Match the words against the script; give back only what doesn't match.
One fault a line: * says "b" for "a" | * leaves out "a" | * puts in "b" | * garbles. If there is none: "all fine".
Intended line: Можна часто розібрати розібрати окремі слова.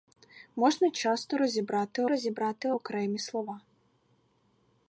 all fine